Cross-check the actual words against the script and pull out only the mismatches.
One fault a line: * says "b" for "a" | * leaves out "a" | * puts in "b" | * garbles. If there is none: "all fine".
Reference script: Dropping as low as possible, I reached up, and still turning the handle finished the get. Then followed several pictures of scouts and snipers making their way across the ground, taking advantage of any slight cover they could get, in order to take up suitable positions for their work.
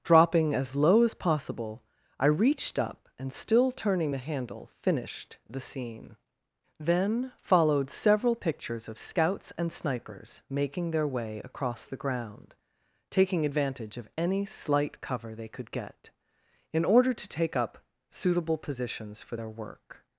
* says "scene" for "get"